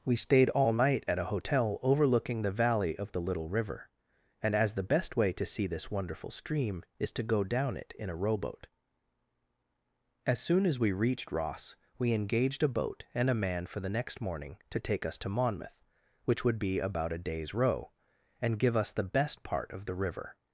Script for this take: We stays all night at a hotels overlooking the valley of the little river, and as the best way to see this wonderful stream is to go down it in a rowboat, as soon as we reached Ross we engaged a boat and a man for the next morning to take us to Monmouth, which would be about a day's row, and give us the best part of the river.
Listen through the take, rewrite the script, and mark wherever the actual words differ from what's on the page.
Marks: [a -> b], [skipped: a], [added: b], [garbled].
We [stays -> stayed] all night at a [hotels -> hotel] overlooking the valley of the little river, and as the best way to see this wonderful stream is to go down it in a rowboat, as soon as we reached Ross we engaged a boat and a man for the next morning to take us to Monmouth, which would be about a day's row, and give us the best part of the river.